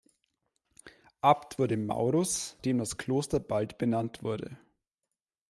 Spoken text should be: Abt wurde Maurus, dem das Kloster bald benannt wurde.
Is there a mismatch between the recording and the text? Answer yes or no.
no